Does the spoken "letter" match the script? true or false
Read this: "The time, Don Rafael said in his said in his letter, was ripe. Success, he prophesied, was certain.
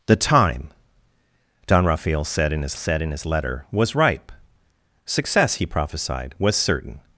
true